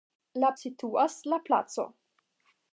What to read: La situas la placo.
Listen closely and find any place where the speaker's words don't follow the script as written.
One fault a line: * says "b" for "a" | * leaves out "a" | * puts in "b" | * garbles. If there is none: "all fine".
all fine